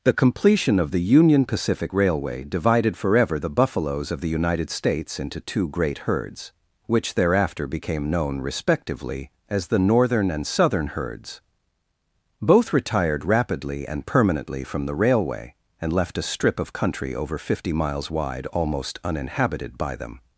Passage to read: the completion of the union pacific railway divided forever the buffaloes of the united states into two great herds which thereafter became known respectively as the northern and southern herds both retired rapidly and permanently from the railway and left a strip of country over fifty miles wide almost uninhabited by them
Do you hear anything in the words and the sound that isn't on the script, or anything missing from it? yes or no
no